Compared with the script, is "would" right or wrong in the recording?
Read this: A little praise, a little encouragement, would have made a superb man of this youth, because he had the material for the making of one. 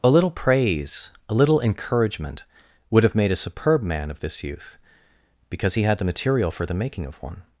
right